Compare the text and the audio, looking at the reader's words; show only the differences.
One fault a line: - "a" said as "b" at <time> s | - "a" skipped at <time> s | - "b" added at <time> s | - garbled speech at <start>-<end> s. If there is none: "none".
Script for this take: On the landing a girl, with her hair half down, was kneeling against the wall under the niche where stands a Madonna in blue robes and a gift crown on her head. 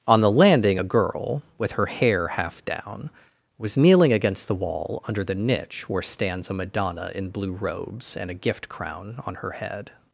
none